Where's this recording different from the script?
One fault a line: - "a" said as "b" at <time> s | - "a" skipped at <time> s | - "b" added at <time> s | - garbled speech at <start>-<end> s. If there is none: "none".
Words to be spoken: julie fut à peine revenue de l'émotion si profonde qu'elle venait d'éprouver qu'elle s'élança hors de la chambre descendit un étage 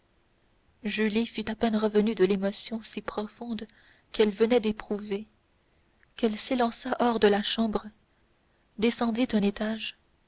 none